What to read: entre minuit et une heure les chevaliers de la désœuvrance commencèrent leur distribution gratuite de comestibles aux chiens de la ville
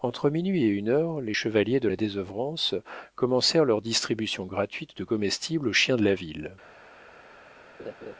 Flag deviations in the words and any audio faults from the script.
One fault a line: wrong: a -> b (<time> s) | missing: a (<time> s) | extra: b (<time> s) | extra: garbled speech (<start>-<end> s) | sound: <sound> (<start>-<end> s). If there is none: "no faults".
sound: laugh (7.8-8.2 s)